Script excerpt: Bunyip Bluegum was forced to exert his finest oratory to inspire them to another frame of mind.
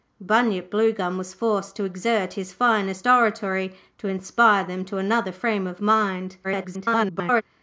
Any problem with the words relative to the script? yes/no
yes